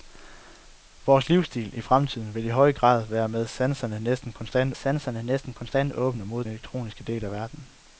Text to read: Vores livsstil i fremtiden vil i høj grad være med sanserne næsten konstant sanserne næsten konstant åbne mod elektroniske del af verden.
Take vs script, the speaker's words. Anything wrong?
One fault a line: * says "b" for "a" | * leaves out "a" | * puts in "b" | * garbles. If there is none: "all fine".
all fine